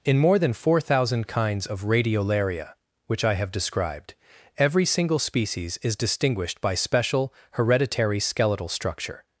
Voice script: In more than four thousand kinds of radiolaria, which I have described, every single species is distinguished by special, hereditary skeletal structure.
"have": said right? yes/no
yes